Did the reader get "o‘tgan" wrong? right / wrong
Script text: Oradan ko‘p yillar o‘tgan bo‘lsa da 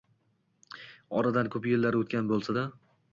right